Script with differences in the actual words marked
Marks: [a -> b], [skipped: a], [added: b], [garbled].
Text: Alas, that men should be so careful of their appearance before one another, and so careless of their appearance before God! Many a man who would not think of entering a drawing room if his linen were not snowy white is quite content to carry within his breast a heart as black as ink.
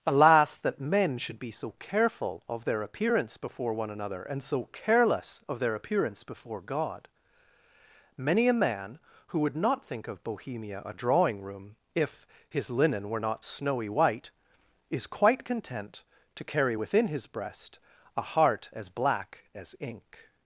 Alas, that men should be so careful of their appearance before one another, and so careless of their appearance before God! Many a man who would not think of [entering -> bohemia] a drawing room if his linen were not snowy white is quite content to carry within his breast a heart as black as ink.